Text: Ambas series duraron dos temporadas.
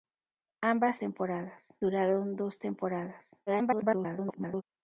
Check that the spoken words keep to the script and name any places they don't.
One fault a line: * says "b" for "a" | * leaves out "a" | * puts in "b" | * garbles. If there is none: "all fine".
* says "temporadas" for "series"
* garbles